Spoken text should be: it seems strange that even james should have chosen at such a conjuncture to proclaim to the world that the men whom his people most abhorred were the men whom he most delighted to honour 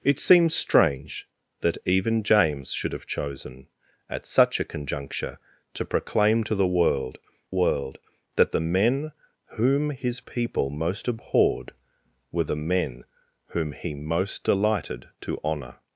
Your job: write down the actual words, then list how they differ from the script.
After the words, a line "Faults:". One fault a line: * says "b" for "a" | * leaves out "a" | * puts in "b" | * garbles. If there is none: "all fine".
it seems strange that even james should have chosen at such a conjuncture to proclaim to the world world that the men whom his people most abhorred were the men whom he most delighted to honour
Faults:
* puts in "world"